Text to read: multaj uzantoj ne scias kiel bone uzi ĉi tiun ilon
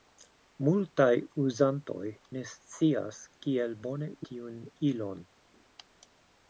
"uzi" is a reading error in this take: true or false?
true